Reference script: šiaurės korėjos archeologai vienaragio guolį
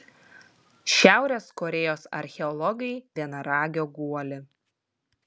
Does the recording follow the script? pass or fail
pass